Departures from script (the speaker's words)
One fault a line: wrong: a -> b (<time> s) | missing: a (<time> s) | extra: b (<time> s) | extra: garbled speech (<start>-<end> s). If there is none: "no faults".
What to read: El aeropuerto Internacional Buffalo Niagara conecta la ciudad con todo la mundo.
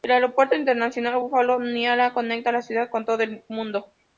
wrong: la -> el (3.2 s)